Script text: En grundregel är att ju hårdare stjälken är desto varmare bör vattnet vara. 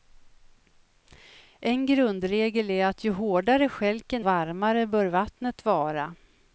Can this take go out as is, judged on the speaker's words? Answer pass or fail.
fail